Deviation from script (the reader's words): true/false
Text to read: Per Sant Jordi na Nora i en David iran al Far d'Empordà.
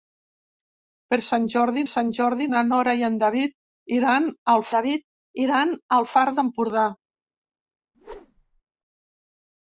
true